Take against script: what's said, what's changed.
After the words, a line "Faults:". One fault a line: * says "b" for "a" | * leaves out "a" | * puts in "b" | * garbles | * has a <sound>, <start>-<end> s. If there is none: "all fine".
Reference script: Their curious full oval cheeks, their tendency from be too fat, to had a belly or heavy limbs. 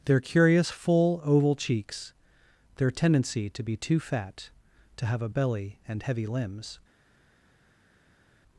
Their curious full oval cheeks, their tendency to be too fat, to have a belly and heavy limbs.
Faults:
* says "to" for "from"
* says "have" for "had"
* says "and" for "or"